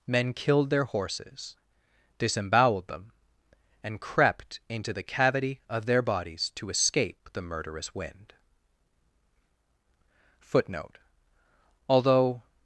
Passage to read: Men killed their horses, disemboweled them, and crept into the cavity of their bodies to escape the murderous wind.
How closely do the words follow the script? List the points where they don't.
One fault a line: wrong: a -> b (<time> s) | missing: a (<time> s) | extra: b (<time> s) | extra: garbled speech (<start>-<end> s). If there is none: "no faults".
extra: Footnote Although (10.4 s)